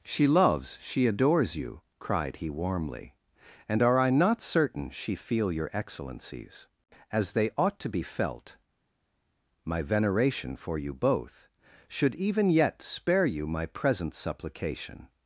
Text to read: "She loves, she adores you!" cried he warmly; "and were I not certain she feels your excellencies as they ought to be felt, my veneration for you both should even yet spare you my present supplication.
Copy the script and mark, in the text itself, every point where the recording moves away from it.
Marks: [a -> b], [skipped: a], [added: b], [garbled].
"She loves, she adores you!" cried he warmly; "and [were -> are] I not certain she [feels -> feel] your excellencies as they ought to be felt, my veneration for you both should even yet spare you my present supplication.